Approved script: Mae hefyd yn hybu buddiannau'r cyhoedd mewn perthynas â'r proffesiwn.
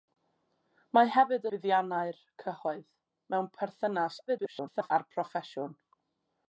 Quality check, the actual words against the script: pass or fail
fail